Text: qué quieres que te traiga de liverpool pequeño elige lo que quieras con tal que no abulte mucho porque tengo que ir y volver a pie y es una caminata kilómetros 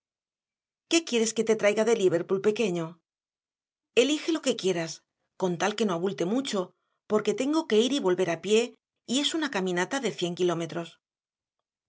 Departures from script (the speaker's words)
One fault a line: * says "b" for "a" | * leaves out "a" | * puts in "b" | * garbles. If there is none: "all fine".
* puts in "de cien"